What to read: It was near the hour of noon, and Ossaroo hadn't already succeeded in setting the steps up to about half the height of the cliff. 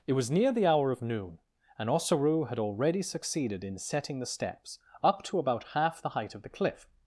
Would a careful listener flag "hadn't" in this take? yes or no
yes